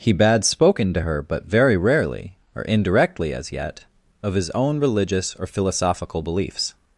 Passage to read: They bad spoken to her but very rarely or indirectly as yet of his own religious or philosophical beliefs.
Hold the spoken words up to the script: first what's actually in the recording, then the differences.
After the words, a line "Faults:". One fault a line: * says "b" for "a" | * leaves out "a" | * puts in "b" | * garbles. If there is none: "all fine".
He bad spoken to her but very rarely or indirectly as yet of his own religious or philosophical beliefs.
Faults:
* says "He" for "They"